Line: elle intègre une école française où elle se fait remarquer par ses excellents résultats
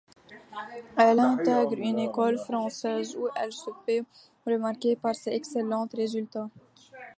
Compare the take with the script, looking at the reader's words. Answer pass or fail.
pass